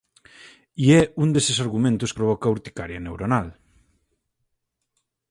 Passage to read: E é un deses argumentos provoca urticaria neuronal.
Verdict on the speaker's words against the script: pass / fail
pass